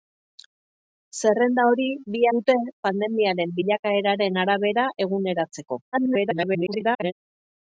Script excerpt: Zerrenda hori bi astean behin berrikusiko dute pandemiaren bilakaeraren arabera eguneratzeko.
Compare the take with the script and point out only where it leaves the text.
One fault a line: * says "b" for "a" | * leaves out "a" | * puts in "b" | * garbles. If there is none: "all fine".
* leaves out "astean behin berrikusiko"
* garbles